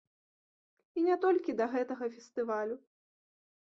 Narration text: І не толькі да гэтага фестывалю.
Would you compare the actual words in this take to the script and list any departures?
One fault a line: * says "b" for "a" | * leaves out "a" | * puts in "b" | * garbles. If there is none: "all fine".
all fine